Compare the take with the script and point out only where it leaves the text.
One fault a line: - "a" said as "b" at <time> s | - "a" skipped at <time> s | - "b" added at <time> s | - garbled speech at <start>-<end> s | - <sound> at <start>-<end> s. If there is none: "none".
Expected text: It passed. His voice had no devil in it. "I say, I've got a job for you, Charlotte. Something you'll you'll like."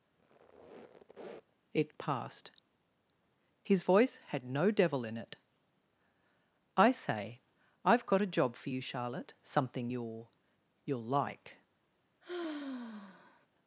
- squeak at 0.2-1.6 s
- sigh at 12.2-13.5 s